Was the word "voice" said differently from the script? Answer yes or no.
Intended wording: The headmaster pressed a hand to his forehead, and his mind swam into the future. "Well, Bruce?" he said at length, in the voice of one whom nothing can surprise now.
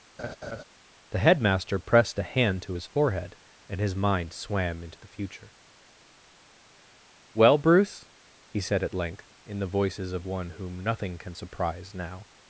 yes